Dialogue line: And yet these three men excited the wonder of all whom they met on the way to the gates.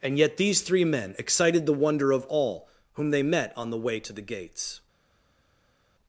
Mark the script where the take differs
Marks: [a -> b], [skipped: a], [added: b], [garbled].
And yet these three men excited the wonder of all whom they met on the way to the gates.